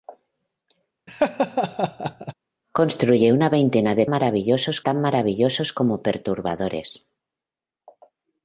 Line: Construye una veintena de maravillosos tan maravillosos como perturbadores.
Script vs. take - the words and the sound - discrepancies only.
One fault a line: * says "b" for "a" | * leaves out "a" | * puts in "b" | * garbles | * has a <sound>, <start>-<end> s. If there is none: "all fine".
* has a laugh, 1.1-2.3 s